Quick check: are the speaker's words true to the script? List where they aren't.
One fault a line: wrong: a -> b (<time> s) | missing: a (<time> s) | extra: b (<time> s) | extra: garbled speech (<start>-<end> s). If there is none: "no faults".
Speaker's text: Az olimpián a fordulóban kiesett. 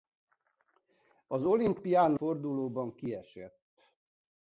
no faults